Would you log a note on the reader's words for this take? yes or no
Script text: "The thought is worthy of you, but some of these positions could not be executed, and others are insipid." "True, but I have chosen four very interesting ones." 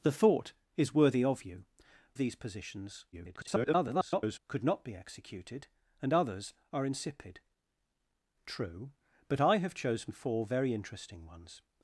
yes